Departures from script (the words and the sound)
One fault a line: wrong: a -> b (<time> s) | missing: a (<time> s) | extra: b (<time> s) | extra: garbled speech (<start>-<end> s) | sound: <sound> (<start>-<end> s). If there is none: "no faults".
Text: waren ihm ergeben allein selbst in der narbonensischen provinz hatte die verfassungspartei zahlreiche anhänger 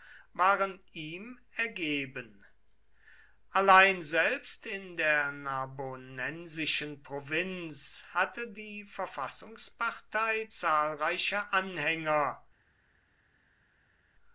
no faults